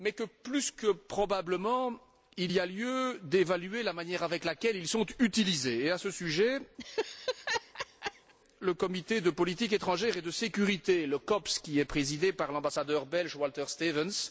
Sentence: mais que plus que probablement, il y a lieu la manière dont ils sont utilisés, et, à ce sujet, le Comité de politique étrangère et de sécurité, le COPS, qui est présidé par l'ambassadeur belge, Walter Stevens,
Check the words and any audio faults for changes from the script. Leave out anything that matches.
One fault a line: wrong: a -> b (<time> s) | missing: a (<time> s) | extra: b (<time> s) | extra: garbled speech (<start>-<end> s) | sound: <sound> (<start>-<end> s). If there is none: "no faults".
extra: d'évaluer (3.2 s)
sound: laugh (6.8-8.3 s)